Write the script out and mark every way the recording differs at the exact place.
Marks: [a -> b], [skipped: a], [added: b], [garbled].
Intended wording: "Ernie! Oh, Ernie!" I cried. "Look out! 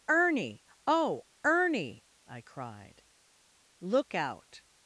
"Ernie! Oh, Ernie!" I cried. "Look out!